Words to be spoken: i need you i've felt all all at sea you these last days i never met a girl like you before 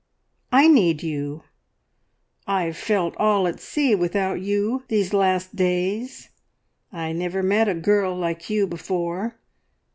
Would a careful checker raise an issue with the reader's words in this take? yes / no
yes